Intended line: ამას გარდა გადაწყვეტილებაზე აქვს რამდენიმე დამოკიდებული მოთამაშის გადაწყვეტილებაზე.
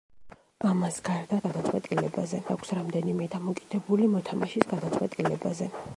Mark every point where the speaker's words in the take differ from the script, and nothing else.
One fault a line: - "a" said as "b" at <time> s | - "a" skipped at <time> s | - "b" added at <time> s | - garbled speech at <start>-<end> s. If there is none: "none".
none